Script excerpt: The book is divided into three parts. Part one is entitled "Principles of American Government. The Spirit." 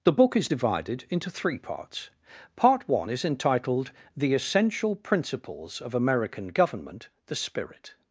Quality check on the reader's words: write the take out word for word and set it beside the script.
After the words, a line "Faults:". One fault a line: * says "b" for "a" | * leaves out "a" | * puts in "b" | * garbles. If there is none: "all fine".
The book is divided into three parts. Part one is entitled "The Essential Principles of American Government. The Spirit."
Faults:
* puts in "The Essential"